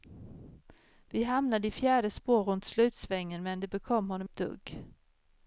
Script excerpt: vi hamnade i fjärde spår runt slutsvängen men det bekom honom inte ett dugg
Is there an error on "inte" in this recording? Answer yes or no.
yes